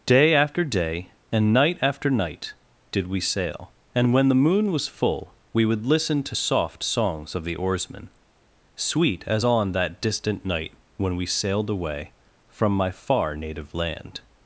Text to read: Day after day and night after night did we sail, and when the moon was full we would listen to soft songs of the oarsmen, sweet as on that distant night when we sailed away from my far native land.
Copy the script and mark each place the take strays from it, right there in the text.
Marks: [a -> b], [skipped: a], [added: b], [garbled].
Day after day and night after night did we sail, and when the moon was full we would listen to soft songs of the oarsmen, sweet as on that distant night when we sailed away from my far native land.